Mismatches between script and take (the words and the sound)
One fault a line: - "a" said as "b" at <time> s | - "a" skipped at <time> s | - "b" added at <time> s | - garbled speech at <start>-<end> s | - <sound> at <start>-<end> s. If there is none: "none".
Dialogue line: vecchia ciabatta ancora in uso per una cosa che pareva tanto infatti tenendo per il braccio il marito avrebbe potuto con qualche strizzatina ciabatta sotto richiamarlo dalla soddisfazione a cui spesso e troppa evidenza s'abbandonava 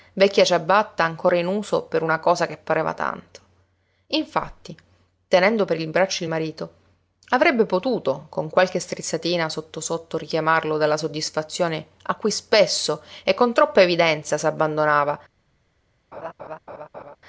- "ciabatta" said as "sotto" at 9.5 s
- "con" added at 13.3 s
- laugh at 16.1-17.2 s